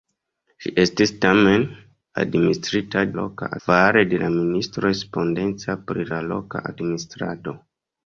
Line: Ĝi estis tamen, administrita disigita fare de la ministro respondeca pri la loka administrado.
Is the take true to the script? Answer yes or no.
no